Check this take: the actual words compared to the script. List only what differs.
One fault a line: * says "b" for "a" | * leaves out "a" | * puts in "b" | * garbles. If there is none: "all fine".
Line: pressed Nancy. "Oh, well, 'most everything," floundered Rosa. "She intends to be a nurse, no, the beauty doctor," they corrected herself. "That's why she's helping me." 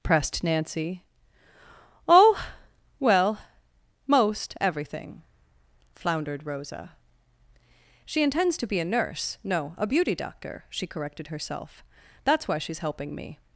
* says "a" for "the"
* says "she" for "they"